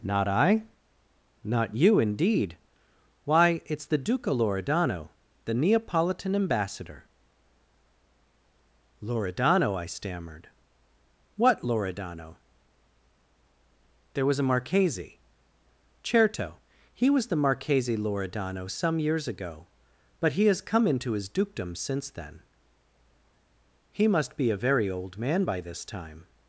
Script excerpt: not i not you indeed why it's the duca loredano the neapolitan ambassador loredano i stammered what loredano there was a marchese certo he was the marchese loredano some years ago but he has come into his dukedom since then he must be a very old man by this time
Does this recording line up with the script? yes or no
yes